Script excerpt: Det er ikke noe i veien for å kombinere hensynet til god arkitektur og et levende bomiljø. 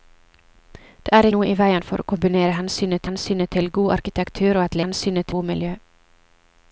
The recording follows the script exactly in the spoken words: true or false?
false